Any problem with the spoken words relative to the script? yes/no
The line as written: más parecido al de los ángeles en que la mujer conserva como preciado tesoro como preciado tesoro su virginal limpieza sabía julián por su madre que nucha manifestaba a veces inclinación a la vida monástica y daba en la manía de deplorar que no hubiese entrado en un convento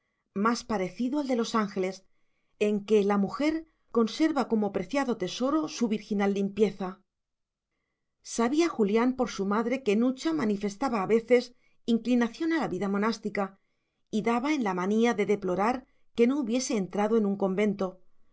yes